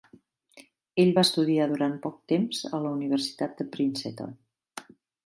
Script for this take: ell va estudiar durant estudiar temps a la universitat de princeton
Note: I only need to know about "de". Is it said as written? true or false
true